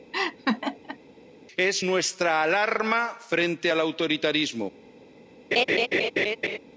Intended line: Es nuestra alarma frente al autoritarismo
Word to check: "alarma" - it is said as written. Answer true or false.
true